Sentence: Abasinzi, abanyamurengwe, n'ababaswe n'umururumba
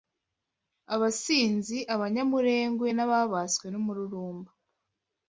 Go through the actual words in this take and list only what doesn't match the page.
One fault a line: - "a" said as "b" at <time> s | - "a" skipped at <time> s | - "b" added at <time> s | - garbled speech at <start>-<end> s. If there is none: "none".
none